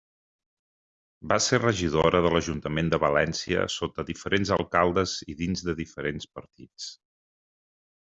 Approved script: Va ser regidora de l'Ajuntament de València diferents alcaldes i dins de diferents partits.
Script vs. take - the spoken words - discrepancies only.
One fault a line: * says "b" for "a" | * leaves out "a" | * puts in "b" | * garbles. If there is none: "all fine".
* puts in "sota"